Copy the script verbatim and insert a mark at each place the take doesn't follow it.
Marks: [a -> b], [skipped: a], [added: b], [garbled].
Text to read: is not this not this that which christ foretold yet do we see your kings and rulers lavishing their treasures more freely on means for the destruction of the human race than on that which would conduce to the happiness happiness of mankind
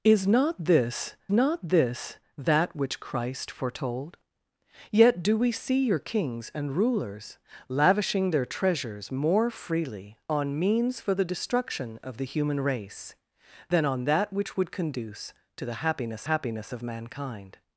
is not this not this that which christ foretold yet do we see your kings and rulers lavishing their treasures more freely on means for the destruction of the human race than on that which would conduce to the happiness happiness of mankind